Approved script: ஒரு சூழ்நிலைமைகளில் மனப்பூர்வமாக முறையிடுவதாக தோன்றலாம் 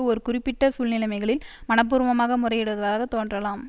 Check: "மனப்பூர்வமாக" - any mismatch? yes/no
no